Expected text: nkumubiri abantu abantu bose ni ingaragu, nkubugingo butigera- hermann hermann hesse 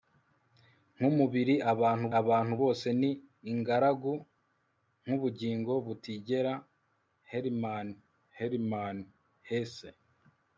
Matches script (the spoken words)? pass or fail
pass